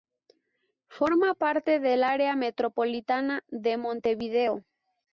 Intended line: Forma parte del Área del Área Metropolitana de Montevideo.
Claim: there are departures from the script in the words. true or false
true